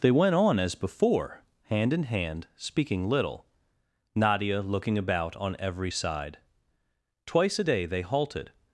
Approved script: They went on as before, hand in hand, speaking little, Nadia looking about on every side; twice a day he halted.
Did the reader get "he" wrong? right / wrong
wrong